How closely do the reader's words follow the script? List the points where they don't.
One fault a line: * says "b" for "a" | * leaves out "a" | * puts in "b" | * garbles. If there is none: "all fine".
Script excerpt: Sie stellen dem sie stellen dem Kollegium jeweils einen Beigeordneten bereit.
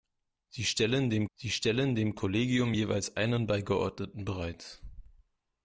all fine